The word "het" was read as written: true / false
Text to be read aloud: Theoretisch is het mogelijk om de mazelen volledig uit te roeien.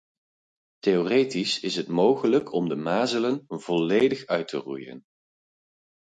true